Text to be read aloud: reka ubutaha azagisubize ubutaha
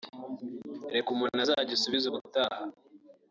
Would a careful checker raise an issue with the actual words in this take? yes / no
yes